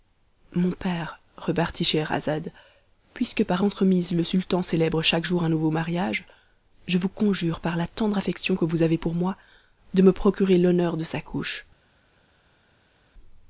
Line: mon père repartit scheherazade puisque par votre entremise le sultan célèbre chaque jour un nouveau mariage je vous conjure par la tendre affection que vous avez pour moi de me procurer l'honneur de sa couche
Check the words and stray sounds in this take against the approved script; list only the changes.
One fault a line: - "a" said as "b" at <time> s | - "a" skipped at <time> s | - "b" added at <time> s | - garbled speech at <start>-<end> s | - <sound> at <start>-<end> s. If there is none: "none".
- "votre" skipped at 3.6 s